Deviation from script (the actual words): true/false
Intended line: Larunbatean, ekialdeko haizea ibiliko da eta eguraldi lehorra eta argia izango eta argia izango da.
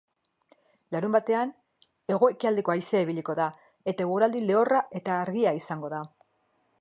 true